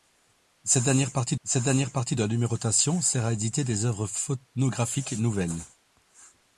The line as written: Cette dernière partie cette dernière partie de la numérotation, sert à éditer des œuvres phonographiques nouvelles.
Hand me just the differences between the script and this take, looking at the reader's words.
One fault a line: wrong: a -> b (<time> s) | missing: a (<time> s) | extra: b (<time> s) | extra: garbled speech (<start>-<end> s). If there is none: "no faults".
no faults